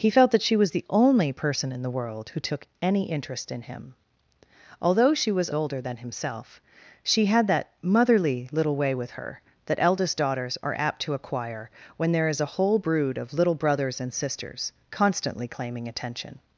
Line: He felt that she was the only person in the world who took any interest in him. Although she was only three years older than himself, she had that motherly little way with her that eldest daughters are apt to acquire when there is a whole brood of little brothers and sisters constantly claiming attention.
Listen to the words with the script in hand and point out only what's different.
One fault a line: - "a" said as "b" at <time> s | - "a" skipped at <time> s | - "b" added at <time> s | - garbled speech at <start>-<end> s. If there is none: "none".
- "only three years" skipped at 5.5 s